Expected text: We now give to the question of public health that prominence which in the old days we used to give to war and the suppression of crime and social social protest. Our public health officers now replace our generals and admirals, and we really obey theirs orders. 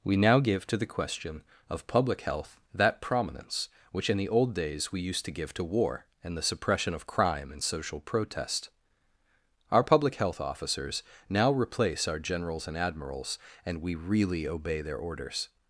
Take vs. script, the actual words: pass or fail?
fail